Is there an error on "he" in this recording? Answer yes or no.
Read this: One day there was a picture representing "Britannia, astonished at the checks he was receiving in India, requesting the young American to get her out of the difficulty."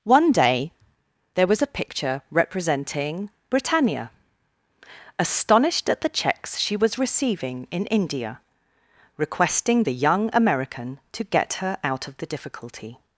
yes